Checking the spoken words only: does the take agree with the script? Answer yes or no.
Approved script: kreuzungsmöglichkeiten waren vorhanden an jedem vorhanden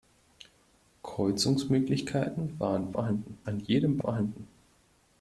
yes